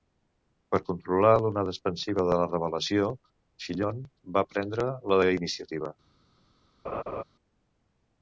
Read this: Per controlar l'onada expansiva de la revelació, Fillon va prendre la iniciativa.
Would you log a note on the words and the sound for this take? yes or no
yes